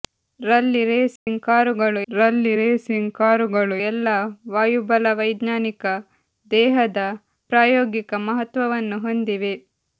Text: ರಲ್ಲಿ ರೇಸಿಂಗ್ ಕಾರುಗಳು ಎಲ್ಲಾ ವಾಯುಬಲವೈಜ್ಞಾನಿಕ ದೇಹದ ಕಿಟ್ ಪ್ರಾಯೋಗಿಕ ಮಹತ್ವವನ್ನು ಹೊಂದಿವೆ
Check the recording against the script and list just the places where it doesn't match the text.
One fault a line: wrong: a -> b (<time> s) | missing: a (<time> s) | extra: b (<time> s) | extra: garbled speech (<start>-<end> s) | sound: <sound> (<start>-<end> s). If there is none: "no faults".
sound: dropout (1.2-1.3 s)
extra: ರಲ್ಲಿ ರೇಸಿಂಗ್ ಕಾರುಗಳು (2.1 s)
missing: ಕಿಟ್ (7.0 s)